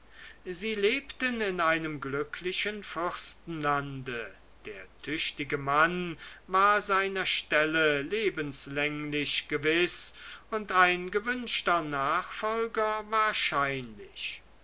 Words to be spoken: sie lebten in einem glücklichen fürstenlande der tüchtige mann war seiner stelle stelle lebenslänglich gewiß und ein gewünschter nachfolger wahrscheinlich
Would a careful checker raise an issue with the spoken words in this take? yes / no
yes